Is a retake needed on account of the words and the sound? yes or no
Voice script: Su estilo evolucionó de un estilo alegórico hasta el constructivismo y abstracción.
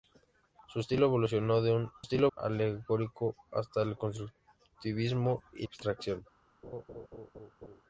yes